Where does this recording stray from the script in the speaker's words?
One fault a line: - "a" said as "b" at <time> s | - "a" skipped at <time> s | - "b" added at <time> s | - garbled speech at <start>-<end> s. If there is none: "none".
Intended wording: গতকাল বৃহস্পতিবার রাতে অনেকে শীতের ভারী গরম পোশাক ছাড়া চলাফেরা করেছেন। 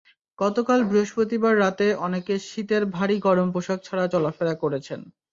none